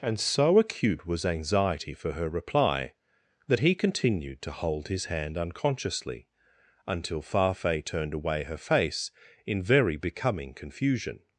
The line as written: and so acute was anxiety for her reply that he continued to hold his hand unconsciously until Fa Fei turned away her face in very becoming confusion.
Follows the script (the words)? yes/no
yes